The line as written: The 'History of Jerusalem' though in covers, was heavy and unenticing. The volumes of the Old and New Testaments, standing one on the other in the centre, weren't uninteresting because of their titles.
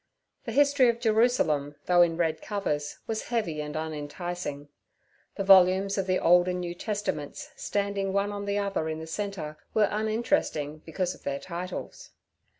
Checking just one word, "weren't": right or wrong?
wrong